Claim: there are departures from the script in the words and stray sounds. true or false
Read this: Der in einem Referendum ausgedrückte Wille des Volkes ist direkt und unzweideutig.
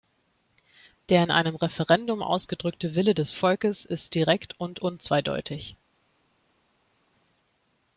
false